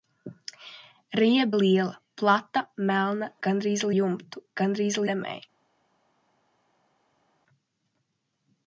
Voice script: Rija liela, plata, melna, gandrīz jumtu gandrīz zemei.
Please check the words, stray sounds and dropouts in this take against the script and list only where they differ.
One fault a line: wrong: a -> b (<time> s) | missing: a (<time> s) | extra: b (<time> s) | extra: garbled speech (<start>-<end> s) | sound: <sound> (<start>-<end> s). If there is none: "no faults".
no faults